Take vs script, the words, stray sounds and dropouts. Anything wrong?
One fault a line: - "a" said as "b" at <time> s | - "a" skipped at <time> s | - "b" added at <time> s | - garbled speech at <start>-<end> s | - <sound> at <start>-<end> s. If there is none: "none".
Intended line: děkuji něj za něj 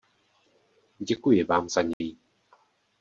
- "něj" said as "vám" at 1.4 s
- dropout at 1.9-2.0 s